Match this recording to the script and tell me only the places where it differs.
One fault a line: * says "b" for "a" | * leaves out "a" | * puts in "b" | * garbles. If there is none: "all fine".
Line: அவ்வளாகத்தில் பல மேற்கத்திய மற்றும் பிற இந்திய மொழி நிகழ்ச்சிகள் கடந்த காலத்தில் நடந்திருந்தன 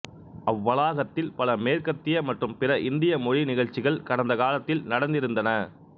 all fine